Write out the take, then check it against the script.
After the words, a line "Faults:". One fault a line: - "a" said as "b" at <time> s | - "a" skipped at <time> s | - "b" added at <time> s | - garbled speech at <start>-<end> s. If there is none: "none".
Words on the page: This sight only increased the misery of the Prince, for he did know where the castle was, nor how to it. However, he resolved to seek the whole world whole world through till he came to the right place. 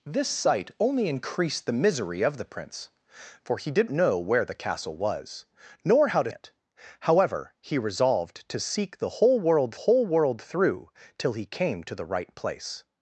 This sight only increased the misery of the Prince, for he did know where the castle was, nor how to it. However, he resolved to seek the whole world whole world through till he came to the right place.
Faults:
none